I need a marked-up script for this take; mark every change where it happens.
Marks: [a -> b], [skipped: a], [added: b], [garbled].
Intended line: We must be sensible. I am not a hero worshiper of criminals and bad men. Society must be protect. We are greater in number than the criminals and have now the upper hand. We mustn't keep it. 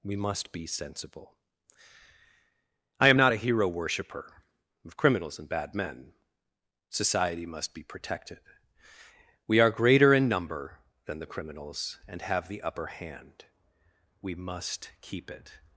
We must be sensible. I am not a hero worshiper of criminals and bad men. Society must be [protect. -> protected] We are greater in number than the criminals and have [skipped: now] the upper hand. We [mustn't -> must] keep it.